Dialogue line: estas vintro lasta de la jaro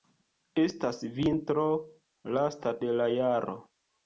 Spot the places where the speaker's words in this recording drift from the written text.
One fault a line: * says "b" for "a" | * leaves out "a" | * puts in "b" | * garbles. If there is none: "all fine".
all fine